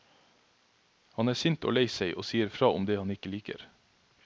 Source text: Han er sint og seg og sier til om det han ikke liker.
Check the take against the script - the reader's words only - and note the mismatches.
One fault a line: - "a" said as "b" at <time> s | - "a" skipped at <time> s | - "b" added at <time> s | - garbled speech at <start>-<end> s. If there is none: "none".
- "lei" added at 1.8 s
- "til" said as "fra" at 2.5 s